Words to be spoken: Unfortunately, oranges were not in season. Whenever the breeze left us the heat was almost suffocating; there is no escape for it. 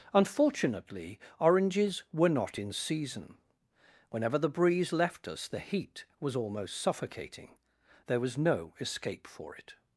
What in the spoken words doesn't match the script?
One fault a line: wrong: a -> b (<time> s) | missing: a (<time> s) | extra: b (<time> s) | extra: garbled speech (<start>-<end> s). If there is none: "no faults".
wrong: is -> was (8.2 s)